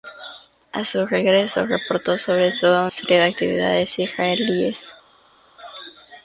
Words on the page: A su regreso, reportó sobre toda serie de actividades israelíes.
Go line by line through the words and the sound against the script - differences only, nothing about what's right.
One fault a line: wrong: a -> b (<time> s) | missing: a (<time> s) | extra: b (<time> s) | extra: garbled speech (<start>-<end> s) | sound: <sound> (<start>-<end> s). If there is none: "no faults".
no faults